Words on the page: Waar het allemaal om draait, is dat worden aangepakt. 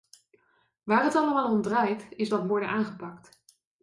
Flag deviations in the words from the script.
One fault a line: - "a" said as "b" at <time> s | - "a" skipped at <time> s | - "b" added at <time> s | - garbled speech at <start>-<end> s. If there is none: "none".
none